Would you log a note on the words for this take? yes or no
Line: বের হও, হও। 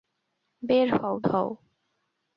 no